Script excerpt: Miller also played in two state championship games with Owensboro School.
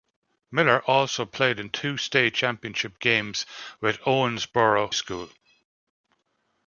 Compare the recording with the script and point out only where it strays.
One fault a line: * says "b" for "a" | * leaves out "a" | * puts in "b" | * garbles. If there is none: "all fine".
all fine